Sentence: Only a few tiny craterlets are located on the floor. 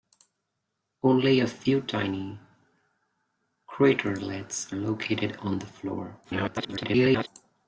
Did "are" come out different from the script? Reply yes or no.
yes